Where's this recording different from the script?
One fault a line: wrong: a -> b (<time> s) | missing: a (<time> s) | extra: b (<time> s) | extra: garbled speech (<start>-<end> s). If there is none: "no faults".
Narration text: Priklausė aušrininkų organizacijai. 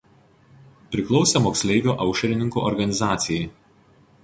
extra: moksleivių (1.4 s)